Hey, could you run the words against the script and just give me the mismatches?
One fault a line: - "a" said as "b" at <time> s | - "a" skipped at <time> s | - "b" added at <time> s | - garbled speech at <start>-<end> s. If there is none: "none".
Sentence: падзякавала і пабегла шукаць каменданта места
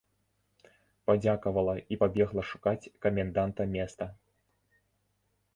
none